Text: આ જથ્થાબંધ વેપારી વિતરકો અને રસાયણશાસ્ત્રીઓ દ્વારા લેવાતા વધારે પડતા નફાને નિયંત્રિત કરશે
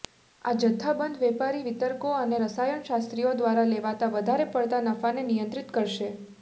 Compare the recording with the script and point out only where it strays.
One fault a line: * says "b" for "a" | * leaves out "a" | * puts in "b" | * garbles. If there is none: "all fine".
all fine